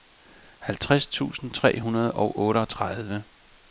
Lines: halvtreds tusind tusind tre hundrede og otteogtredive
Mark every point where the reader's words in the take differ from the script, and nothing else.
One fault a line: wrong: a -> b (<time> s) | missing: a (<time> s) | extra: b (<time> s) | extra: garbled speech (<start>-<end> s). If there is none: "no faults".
missing: tusind (1.5 s)